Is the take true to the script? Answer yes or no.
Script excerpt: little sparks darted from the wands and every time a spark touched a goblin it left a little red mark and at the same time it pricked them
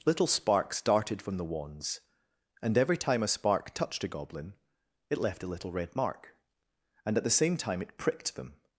yes